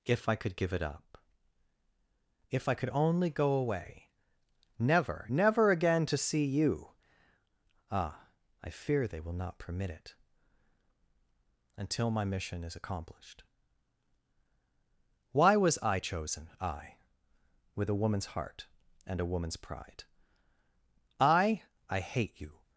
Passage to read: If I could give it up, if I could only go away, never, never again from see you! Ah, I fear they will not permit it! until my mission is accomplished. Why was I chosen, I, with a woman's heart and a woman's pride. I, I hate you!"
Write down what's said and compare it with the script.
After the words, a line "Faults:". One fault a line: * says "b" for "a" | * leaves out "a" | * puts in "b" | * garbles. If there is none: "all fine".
If I could give it up, if I could only go away, never, never again to see you! Ah, I fear they will not permit it! until my mission is accomplished. Why was I chosen, I, with a woman's heart and a woman's pride. I, I hate you!"
Faults:
* says "to" for "from"